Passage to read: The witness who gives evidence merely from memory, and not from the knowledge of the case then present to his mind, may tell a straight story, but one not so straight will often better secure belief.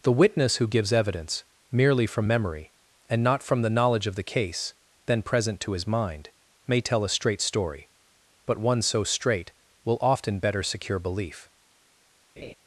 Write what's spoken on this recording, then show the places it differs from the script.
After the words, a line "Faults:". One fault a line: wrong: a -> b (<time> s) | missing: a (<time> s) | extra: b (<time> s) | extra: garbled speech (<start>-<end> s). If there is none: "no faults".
The witness who gives evidence merely from memory, and not from the knowledge of the case then present to his mind, may tell a straight story, but one so straight will often better secure belief.
Faults:
missing: not (8.8 s)